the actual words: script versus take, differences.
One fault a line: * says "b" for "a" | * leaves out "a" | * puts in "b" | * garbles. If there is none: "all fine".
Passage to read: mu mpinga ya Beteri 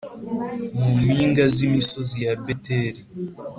* puts in "z'imisozi"